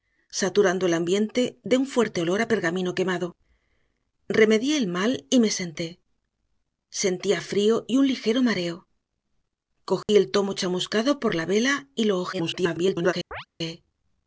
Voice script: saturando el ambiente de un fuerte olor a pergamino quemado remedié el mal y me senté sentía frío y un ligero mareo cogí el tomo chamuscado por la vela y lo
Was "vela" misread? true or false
false